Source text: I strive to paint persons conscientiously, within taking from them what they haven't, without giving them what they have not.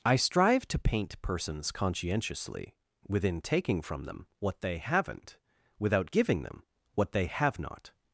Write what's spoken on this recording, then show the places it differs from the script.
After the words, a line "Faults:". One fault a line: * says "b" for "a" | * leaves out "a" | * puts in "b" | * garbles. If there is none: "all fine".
I strive to paint persons conscientiously, within taking from them what they haven't, without giving them what they have not.
Faults:
all fine